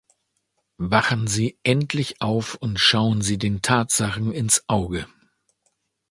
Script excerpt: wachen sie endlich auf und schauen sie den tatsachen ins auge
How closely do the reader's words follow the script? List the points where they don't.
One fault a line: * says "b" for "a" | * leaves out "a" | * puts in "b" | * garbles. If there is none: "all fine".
all fine